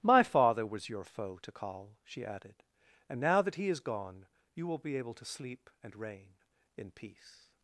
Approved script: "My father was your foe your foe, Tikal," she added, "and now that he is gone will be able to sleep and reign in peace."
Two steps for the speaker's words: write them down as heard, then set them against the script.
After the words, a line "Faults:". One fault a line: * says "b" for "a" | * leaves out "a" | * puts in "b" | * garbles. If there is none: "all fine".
"My father was your foe, Tikal," she added, "and now that he is gone you will be able to sleep and reign in peace."
Faults:
* leaves out "your foe"
* puts in "you"